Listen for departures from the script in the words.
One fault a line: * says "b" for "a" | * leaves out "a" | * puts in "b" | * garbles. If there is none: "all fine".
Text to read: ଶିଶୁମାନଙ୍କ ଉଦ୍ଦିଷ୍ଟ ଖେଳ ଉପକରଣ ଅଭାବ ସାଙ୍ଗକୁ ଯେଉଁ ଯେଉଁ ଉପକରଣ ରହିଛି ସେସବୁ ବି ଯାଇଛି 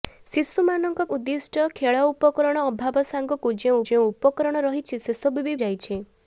all fine